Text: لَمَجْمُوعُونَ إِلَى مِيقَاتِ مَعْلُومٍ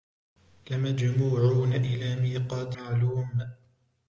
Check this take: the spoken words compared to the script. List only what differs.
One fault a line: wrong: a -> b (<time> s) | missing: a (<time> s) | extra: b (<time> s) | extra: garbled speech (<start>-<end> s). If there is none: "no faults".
no faults